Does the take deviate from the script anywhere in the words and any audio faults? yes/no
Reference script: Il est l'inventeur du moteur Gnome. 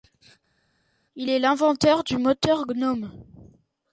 no